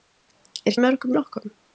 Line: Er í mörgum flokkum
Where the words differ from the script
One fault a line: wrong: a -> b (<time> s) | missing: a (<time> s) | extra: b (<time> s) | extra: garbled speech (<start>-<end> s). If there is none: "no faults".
no faults